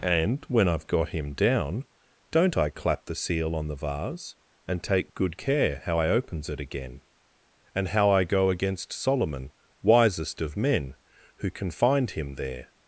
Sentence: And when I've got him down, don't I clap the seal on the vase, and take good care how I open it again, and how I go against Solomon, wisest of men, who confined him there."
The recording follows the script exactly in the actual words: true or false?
false